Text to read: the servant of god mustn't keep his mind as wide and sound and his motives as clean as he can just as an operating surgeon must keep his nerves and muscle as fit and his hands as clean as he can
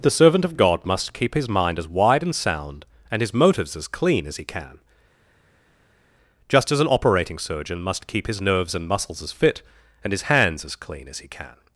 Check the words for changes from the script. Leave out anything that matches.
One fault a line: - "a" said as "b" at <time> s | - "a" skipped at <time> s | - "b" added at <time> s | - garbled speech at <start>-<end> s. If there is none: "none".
- "mustn't" said as "must" at 0.8 s
- "muscle" said as "muscles" at 8.9 s